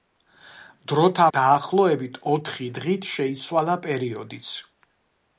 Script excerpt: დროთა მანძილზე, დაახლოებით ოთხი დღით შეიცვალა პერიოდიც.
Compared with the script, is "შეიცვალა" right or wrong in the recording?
right